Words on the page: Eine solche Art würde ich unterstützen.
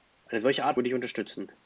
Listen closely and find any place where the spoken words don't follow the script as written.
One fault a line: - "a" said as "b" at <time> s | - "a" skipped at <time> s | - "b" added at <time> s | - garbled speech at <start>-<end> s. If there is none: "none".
none